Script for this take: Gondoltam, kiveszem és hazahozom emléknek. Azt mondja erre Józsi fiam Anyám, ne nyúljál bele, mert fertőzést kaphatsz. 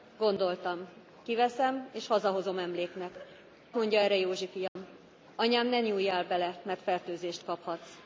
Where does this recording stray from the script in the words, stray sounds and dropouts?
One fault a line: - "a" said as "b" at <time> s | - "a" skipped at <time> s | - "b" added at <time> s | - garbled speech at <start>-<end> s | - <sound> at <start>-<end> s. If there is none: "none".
- "Azt" skipped at 3.2 s
- dropout at 4.7-4.8 s